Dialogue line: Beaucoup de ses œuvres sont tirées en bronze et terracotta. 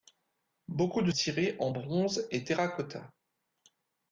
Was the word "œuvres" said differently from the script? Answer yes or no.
yes